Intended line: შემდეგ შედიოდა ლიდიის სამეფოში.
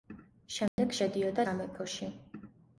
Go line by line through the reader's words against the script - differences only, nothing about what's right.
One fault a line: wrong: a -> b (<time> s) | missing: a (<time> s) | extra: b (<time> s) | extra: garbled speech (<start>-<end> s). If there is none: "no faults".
missing: ლიდიის (1.5 s)